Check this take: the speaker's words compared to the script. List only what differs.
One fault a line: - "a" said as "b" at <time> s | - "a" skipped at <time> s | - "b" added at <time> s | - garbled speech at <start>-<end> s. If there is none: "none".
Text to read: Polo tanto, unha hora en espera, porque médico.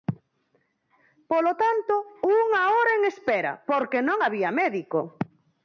- "non había" added at 4.1 s